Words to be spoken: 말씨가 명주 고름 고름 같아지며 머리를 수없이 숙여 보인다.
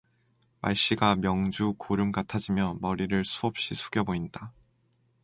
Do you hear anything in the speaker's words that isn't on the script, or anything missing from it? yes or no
yes